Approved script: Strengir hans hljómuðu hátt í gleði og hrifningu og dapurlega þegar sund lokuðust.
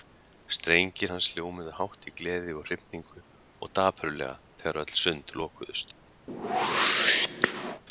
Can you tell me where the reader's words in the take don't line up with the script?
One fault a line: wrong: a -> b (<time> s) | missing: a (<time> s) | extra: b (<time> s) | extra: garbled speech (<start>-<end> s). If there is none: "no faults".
extra: öll (4.8 s)